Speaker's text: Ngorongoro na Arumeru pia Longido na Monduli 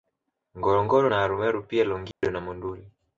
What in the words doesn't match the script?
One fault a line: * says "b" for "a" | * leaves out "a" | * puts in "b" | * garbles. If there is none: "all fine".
all fine